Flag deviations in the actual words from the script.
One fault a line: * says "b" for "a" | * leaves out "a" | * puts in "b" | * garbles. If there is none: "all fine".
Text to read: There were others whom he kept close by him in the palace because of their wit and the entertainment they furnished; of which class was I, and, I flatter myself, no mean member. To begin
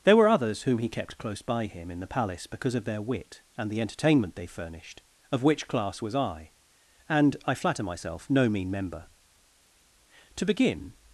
all fine